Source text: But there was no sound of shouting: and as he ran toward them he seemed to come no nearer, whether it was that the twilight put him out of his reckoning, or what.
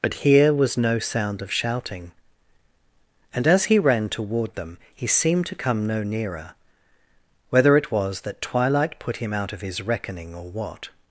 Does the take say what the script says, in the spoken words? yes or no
no